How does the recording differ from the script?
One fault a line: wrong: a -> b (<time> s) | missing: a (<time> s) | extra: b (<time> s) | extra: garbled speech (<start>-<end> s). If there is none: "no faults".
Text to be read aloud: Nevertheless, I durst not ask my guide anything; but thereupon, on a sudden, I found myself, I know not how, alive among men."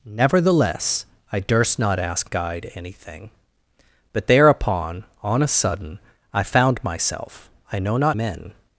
missing: my (2.3 s)
missing: how alive among (8.2 s)